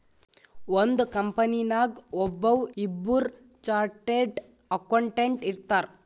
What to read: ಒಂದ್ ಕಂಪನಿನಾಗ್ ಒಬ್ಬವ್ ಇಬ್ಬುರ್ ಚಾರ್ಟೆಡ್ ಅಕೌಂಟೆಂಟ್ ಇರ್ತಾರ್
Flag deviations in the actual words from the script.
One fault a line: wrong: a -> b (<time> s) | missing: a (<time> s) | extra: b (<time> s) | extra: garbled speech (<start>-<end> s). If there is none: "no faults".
no faults